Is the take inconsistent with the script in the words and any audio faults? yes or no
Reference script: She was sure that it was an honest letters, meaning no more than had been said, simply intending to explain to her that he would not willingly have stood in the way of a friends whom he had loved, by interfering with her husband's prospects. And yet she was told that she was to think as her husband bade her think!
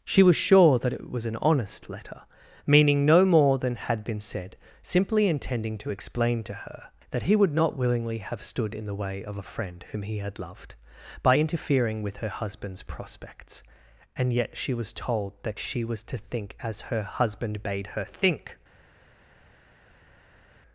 yes